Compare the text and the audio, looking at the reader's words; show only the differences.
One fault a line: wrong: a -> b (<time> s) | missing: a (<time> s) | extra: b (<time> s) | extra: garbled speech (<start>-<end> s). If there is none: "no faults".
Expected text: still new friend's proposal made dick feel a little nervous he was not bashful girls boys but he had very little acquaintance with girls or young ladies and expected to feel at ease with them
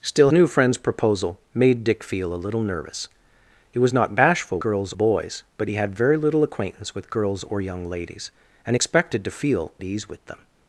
no faults